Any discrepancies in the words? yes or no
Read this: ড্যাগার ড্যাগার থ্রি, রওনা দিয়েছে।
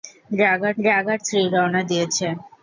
no